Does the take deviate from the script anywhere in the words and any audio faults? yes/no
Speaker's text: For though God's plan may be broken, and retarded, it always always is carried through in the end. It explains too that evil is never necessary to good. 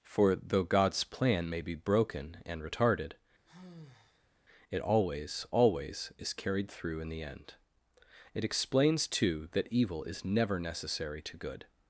yes